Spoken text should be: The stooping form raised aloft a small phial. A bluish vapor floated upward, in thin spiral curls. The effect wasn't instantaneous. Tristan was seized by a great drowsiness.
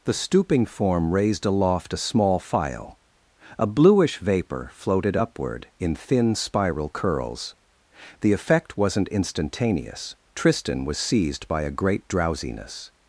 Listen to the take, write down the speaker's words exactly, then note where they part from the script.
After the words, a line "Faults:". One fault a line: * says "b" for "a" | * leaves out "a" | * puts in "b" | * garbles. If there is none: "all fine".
The stooping form raised aloft a small phial. A bluish vapor floated upward, in thin spiral curls. The effect wasn't instantaneous. Tristan was seized by a great drowsiness.
Faults:
all fine